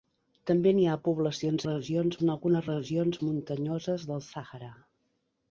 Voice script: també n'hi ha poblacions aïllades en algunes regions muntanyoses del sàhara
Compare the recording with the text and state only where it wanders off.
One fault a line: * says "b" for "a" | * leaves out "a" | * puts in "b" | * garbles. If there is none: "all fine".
* says "regions" for "aïllades"